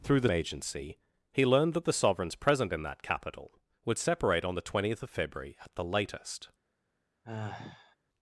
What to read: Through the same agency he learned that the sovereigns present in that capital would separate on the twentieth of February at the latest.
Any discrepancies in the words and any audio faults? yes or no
yes